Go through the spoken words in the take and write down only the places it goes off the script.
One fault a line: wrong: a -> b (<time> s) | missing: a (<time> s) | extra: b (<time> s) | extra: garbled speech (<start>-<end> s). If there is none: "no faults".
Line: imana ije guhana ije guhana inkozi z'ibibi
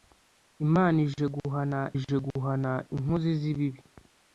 no faults